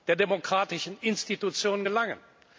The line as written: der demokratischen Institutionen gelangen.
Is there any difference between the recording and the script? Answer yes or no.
no